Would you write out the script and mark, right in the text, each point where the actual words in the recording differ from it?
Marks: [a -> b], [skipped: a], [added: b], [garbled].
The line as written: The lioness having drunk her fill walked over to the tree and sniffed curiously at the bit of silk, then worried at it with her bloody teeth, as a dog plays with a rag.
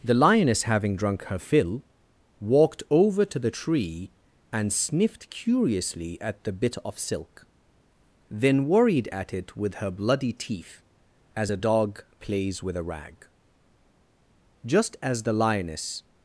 The lioness having drunk her fill walked over to the tree and sniffed curiously at the bit of silk, then worried at it with her bloody teeth, as a dog plays with a rag. [added: Just as the lioness]